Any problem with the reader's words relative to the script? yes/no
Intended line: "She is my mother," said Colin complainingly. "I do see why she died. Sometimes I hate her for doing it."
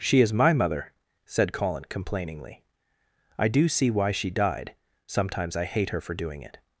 no